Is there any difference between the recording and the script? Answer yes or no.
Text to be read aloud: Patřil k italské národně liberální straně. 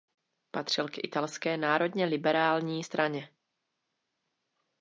no